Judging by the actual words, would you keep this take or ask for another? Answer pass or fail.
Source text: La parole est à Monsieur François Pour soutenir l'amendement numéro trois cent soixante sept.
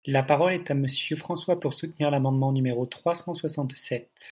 pass